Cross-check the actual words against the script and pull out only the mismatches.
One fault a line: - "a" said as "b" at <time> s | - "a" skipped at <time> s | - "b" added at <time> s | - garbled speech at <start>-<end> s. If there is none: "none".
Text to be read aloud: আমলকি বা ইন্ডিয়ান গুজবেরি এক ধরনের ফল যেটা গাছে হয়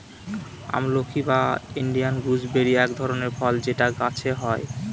none